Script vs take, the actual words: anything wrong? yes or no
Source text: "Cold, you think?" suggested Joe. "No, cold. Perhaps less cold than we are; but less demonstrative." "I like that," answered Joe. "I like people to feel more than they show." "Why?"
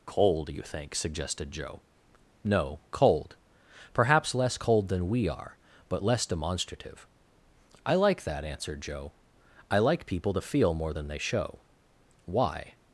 no